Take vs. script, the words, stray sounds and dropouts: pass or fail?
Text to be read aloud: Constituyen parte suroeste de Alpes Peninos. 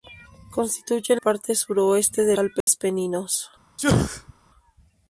fail